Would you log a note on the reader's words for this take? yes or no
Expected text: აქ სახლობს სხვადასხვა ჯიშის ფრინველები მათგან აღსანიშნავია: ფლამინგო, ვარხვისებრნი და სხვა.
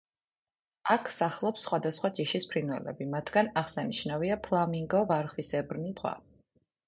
yes